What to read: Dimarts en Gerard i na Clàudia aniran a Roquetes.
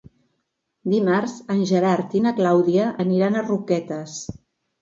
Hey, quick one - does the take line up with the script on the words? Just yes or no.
yes